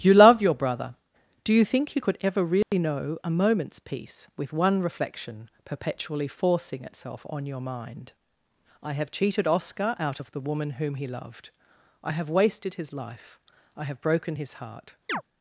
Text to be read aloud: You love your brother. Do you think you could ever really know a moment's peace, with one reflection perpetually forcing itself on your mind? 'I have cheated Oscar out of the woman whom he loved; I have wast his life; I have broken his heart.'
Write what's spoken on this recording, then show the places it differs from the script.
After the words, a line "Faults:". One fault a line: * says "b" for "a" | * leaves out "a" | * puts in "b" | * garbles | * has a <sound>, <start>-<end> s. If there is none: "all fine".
You love your brother. Do you think you could ever really know a moment's peace, with one reflection perpetually forcing itself on your mind? 'I have cheated Oscar out of the woman whom he loved; I have wasted his life; I have broken his heart.'
Faults:
* has a dropout, 2.6-2.7 s
* says "wasted" for "wast"
* has a chirp, 15.1-15.2 s